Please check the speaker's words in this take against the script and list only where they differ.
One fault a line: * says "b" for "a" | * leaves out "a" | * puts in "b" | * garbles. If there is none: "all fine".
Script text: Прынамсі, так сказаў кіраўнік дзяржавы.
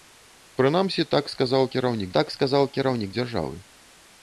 * puts in "так сказаў кіраўнік"